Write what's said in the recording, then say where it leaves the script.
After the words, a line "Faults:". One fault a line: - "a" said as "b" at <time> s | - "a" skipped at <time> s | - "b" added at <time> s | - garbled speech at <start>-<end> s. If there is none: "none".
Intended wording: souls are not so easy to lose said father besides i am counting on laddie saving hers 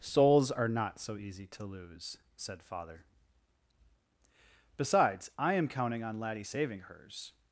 souls are not so easy to lose said father besides i am counting on laddie saving hers
Faults:
none